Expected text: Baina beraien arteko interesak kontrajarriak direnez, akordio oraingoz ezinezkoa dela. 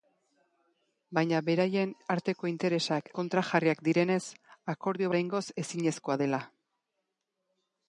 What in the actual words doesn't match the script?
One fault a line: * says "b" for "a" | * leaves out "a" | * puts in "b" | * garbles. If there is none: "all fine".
all fine